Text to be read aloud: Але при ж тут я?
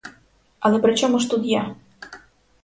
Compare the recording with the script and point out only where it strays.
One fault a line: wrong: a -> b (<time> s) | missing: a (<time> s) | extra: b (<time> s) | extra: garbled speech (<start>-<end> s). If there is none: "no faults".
extra: чому (0.9 s)